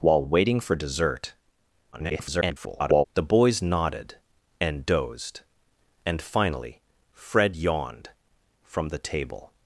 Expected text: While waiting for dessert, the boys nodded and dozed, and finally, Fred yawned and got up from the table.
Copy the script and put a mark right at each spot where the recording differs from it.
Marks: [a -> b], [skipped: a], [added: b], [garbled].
While waiting for dessert, [garbled] the boys nodded and dozed, and finally, Fred yawned [skipped: and got up] from the table.